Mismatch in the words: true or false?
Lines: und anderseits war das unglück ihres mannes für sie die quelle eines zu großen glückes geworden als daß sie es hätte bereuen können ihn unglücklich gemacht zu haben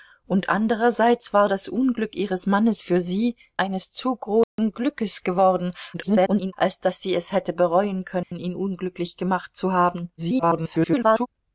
true